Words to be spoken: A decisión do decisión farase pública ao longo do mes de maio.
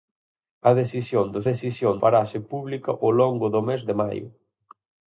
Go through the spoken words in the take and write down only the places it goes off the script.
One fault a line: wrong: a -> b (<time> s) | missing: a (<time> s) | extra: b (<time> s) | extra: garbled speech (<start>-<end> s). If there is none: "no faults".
no faults